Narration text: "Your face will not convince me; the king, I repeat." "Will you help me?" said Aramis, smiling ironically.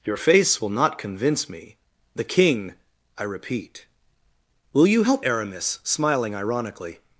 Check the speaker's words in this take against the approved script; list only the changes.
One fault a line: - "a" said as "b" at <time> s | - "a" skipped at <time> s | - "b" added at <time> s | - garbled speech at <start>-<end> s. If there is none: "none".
- "me said" skipped at 5.2 s